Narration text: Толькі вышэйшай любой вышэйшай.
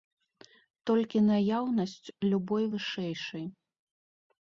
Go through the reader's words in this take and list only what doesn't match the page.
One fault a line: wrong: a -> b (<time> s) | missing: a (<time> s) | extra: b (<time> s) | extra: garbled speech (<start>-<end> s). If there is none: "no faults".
wrong: вышэйшай -> наяўнасць (1.3 s)